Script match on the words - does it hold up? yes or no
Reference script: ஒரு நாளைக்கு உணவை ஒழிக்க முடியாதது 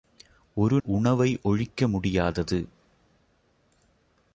no